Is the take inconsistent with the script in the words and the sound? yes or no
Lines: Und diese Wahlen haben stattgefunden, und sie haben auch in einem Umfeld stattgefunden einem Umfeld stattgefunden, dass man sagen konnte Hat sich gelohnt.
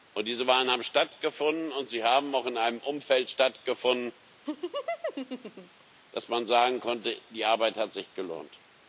yes